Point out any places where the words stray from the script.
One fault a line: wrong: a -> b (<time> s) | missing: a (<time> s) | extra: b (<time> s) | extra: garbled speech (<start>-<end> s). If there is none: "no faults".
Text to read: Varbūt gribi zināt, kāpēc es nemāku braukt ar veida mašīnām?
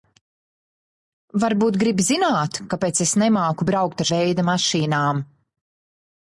no faults